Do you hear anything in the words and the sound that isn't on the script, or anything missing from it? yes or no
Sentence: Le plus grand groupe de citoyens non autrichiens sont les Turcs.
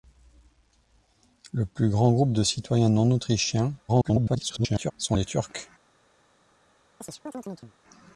yes